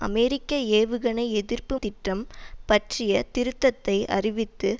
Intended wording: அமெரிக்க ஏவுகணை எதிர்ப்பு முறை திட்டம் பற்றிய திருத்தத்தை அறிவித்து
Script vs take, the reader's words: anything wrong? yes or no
yes